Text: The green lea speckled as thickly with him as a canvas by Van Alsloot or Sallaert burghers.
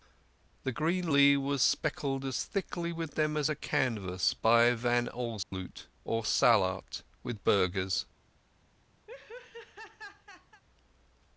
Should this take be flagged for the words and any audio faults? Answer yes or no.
yes